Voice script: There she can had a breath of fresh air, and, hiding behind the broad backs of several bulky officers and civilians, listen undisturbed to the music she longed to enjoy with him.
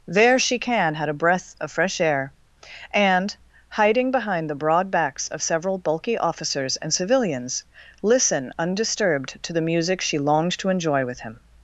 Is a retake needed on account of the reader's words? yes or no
no